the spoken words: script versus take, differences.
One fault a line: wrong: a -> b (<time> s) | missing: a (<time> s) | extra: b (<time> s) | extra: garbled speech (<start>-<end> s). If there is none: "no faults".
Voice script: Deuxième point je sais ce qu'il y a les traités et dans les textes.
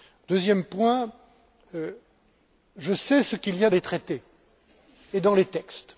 no faults